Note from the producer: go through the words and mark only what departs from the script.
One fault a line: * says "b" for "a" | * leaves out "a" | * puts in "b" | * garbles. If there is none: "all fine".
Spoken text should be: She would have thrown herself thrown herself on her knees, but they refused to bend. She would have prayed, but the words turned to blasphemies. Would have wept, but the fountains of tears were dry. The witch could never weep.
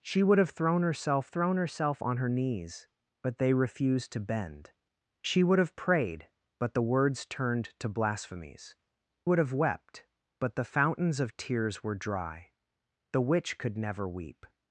all fine